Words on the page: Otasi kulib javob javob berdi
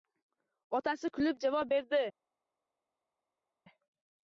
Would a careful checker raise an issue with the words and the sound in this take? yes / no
yes